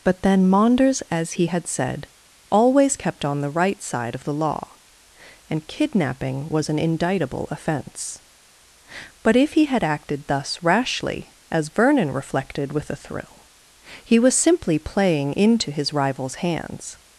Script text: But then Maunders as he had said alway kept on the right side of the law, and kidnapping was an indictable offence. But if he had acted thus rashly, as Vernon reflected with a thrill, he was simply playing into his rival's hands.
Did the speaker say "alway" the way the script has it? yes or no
no